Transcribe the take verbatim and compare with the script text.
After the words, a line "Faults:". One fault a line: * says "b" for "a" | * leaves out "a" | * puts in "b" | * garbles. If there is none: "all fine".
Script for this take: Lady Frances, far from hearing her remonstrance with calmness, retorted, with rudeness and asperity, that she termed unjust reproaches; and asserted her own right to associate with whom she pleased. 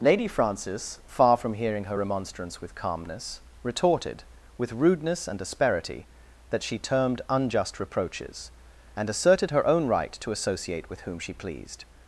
Lady Frances, far from hearing her remonstrance with calmness, retorted, with rudeness and asperity, that she termed unjust reproaches; and asserted her own right to associate with whom she pleased.
Faults:
all fine